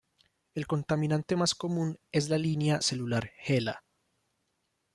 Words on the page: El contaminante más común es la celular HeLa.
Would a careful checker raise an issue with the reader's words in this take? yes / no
yes